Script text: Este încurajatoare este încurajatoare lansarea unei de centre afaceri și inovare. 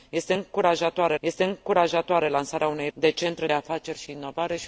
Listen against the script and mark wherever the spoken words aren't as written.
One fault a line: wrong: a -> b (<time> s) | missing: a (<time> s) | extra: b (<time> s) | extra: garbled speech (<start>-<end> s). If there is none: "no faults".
no faults